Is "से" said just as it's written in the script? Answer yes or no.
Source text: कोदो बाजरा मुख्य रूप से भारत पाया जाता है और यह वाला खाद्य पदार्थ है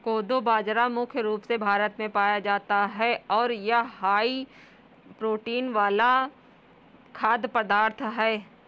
yes